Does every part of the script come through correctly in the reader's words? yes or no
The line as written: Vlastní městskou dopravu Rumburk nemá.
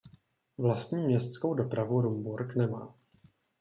yes